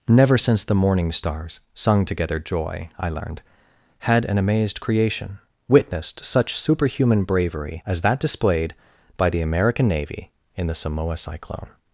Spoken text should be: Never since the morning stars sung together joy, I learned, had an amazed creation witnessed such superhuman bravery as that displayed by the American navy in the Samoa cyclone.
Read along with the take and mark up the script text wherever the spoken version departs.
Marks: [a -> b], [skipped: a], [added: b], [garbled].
Never since the morning stars sung together joy, I learned, had an amazed creation witnessed such superhuman bravery as that displayed by the American navy in the Samoa cyclone.